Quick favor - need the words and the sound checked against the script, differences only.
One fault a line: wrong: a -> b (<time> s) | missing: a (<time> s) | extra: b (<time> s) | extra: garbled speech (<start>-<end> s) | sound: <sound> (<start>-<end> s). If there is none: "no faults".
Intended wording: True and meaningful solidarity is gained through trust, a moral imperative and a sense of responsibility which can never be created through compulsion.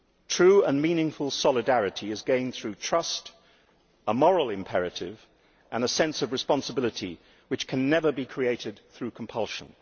no faults